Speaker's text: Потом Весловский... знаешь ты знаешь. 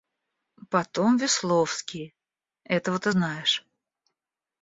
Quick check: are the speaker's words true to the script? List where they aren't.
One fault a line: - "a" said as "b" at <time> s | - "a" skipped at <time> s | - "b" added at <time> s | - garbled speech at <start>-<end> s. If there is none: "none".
- "знаешь" said as "этого" at 2.6 s